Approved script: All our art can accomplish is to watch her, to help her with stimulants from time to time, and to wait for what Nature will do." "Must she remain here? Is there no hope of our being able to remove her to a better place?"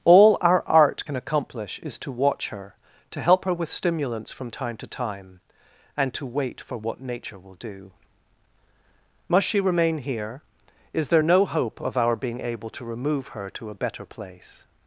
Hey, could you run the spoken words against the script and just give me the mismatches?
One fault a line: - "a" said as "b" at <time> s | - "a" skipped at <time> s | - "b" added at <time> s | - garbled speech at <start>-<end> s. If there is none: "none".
none